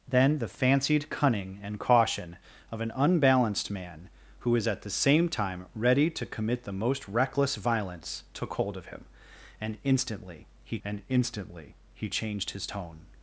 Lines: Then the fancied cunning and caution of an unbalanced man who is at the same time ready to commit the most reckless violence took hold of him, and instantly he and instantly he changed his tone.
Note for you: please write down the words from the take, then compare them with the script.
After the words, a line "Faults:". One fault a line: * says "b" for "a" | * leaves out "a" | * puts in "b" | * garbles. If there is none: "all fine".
Then the fancied cunning and caution of an unbalanced man who is at the same time ready to commit the most reckless violence took hold of him, and instantly he and instantly he changed his tone.
Faults:
all fine